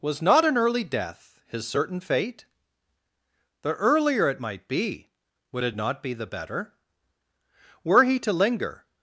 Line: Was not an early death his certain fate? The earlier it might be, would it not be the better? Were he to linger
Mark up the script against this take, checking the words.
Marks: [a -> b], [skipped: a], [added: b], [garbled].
Was not an early death his certain fate? The earlier it might be, would it not be the better? Were he to linger